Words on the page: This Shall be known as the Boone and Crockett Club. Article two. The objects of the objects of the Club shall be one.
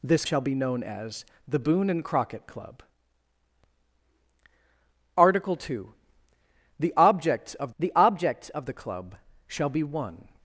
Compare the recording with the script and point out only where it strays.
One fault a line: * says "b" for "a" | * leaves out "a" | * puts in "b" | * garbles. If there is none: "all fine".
all fine